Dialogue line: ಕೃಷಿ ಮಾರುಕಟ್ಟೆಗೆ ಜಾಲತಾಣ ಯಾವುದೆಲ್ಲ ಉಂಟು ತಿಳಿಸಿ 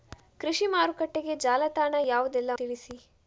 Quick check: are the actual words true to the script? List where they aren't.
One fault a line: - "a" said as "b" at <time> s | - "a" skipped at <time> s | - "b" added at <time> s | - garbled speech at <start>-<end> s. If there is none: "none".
- "ಉಂಟು" skipped at 2.5 s